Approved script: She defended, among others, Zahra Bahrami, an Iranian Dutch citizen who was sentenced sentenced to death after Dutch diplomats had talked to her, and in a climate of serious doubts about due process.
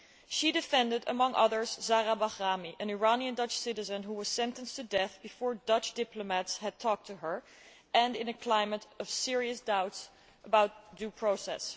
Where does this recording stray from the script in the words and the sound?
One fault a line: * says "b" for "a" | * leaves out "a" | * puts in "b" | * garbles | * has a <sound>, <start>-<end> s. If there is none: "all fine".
* leaves out "sentenced"
* says "before" for "after"